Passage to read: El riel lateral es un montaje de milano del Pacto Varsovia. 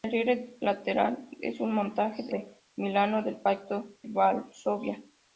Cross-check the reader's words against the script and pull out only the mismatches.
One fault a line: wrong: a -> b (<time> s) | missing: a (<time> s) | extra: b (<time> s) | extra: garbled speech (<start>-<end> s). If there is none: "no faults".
no faults